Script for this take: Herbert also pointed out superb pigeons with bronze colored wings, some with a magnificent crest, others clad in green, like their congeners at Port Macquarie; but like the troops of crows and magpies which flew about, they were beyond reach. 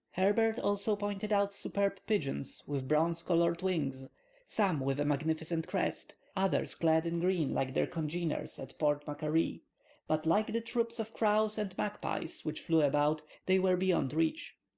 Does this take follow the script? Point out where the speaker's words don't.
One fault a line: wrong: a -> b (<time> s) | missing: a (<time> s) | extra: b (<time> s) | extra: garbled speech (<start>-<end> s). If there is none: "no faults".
no faults